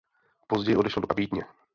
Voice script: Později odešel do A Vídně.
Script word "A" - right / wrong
right